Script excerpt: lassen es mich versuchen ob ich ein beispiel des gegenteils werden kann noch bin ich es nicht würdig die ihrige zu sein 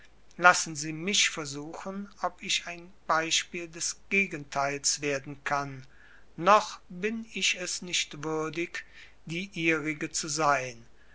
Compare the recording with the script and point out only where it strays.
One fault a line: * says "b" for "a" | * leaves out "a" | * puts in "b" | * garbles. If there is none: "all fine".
* says "sie" for "es"